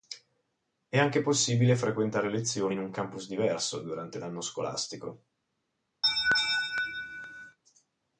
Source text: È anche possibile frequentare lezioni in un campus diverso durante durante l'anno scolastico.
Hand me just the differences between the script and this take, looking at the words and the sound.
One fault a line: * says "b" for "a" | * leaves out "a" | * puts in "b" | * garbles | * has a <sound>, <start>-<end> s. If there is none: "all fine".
* leaves out "durante"
* has a laugh, 6.0-7.6 s